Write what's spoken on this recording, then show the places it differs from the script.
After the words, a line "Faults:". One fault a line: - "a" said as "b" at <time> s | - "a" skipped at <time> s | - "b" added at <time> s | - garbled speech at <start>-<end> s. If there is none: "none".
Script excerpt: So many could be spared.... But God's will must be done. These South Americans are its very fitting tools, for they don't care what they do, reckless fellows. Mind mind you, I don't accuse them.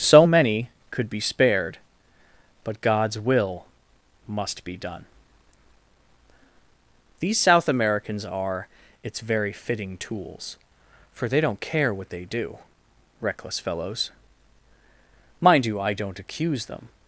So many could be spared.... But God's will must be done. These South Americans are its very fitting tools, for they don't care what they do, reckless fellows. Mind you, I don't accuse them.
Faults:
- "mind" skipped at 15.7 s